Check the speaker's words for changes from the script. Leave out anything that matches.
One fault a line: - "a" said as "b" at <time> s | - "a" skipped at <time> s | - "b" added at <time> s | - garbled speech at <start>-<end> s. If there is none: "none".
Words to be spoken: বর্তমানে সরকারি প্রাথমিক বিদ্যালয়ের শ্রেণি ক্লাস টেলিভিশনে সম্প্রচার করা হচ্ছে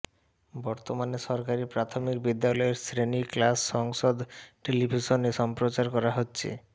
- "সংসদ" added at 3.7 s